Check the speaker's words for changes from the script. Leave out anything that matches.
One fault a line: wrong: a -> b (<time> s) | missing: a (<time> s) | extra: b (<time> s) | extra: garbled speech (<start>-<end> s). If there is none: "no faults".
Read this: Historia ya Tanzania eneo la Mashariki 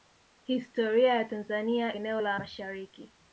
no faults